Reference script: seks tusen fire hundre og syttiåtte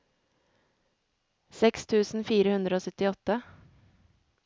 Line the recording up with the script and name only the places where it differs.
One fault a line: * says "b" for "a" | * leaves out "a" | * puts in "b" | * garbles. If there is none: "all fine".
all fine